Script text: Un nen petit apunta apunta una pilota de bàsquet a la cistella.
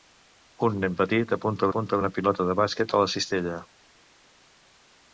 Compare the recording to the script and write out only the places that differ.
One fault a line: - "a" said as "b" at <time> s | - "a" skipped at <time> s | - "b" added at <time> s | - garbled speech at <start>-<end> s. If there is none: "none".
none